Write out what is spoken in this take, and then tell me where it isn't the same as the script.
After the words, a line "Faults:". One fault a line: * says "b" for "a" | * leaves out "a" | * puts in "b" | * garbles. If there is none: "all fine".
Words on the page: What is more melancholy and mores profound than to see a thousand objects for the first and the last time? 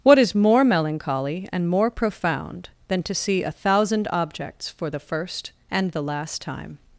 What is more melancholy and more profound than to see a thousand objects for the first and the last time?
Faults:
* says "more" for "mores"